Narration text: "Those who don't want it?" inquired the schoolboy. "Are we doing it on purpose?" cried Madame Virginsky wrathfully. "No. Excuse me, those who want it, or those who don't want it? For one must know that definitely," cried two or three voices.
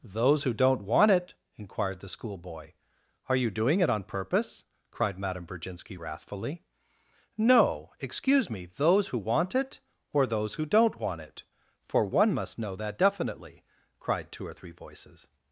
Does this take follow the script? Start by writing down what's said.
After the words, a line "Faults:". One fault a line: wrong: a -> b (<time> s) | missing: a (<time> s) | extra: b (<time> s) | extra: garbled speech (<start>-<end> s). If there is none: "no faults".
"Those who don't want it?" inquired the schoolboy. "Are you doing it on purpose?" cried Madame Virginsky wrathfully. "No. Excuse me, those who want it, or those who don't want it? For one must know that definitely," cried two or three voices.
Faults:
wrong: we -> you (3.4 s)